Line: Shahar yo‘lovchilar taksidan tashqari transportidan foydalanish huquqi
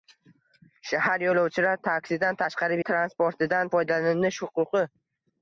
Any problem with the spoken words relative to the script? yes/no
no